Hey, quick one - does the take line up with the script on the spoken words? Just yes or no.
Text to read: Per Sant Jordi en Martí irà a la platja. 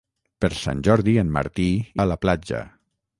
no